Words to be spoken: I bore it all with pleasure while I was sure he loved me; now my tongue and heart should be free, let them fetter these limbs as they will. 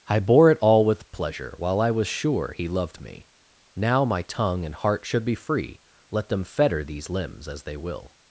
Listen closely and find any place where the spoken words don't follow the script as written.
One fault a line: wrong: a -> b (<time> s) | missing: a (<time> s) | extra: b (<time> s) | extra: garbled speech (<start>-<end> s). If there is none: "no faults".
no faults